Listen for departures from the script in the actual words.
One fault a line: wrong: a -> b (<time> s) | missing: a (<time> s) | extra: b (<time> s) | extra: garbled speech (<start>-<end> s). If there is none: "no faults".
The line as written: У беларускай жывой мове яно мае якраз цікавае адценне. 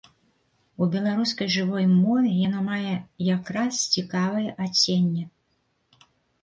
no faults